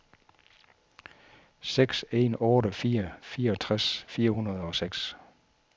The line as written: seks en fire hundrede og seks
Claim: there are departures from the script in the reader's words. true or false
true